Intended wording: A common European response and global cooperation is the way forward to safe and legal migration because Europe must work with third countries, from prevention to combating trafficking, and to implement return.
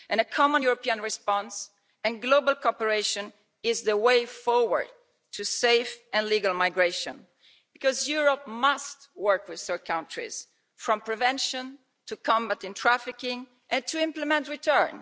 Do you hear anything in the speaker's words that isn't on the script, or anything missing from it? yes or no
no